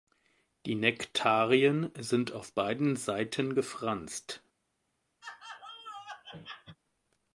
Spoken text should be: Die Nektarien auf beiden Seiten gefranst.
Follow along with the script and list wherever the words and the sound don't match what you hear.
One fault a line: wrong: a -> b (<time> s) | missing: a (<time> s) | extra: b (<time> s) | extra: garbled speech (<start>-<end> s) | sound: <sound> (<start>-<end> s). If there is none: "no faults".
extra: sind (1.9 s)
sound: laugh (5.2-6.8 s)